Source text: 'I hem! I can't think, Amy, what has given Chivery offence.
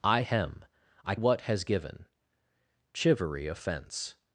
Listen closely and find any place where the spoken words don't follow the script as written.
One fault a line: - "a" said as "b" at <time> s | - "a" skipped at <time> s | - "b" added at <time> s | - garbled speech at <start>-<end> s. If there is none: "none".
- "can't think Amy" skipped at 1.2 s